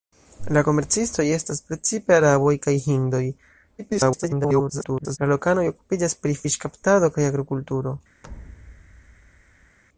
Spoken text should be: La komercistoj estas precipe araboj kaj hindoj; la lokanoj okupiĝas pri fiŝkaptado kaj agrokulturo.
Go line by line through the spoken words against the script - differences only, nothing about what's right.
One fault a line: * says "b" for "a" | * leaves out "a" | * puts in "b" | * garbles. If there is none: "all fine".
* garbles